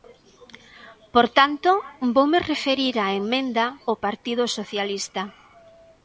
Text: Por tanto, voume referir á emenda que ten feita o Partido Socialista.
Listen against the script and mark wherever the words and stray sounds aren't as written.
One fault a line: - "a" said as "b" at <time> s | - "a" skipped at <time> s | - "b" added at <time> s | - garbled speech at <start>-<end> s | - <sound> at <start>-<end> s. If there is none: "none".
- "que ten feita" skipped at 3.6 s